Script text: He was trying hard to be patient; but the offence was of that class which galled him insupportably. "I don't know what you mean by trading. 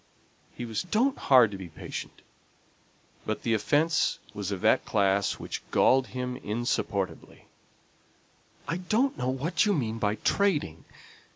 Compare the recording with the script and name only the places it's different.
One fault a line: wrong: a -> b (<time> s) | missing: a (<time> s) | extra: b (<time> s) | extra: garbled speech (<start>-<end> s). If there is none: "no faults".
wrong: trying -> don't (0.8 s)